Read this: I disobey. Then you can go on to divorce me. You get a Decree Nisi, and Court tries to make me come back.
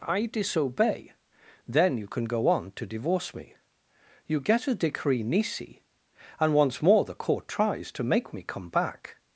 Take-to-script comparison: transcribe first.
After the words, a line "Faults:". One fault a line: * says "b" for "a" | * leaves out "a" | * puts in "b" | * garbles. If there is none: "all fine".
I disobey. Then you can go on to divorce me. You get a Decree Nisi, and once more the Court tries to make me come back.
Faults:
* puts in "once more the"